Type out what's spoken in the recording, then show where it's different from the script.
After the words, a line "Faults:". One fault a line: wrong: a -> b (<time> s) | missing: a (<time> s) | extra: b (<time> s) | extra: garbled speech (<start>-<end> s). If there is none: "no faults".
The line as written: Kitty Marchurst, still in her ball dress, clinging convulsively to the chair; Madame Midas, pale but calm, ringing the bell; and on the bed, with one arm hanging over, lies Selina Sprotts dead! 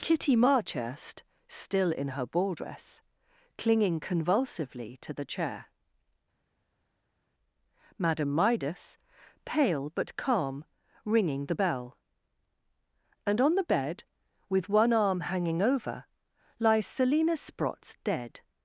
Kitty Marchurst, still in her ball dress, clinging convulsively to the chair; Madame Midas, pale but calm, ringing the bell; and on the bed, with one arm hanging over, lies Selina Sprotts dead!
Faults:
no faults